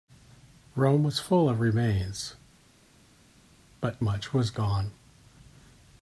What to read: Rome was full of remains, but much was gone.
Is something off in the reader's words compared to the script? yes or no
no